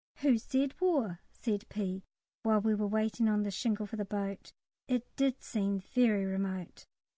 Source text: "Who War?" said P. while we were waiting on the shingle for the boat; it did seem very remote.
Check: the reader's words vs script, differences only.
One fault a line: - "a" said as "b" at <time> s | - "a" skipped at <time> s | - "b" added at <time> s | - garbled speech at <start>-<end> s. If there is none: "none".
- "said" added at 0.4 s